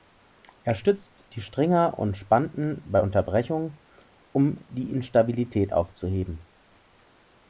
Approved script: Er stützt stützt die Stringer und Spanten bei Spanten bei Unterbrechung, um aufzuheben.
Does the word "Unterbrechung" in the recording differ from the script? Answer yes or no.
yes